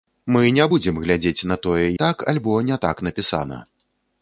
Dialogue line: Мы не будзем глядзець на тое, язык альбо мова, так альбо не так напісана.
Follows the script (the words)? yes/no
no